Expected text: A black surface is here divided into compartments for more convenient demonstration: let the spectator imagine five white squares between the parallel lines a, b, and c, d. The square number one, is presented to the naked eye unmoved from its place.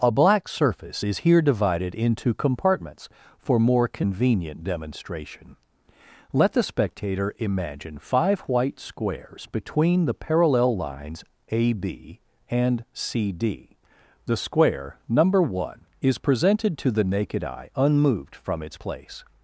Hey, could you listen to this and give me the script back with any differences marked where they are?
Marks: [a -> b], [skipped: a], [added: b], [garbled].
A black surface is here divided into compartments for more convenient demonstration: let the spectator imagine five white squares between the parallel lines a, b, and c, d. The square number one, is presented to the naked eye unmoved from its place.